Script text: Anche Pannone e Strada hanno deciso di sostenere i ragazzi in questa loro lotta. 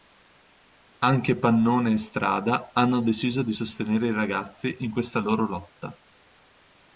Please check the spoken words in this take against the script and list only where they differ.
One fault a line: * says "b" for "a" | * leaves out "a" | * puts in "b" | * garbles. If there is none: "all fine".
all fine